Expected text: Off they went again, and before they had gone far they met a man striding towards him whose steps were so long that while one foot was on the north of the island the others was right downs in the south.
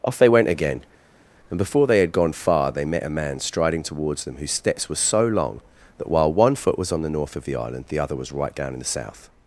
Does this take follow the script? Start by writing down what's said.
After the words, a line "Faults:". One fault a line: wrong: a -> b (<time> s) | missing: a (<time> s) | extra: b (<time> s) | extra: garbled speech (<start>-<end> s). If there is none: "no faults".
Off they went again, and before they had gone far they met a man striding towards them whose steps were so long that while one foot was on the north of the island the other was right down in the south.
Faults:
wrong: him -> them (4.2 s)
wrong: others -> other (8.0 s)
wrong: downs -> down (8.5 s)